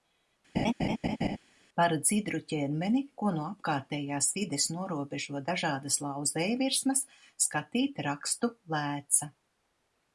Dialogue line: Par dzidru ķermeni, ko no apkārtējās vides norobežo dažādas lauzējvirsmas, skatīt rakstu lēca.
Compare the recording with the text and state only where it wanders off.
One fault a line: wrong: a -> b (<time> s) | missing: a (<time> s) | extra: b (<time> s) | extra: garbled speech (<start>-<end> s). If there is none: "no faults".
no faults